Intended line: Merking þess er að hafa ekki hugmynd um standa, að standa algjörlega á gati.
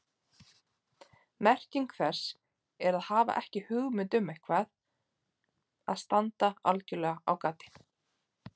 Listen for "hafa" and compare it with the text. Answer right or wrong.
right